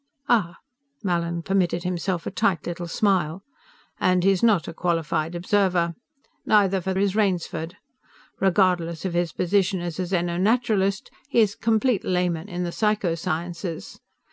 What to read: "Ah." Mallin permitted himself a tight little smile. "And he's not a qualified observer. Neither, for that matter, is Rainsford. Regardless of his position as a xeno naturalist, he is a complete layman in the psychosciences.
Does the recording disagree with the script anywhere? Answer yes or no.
yes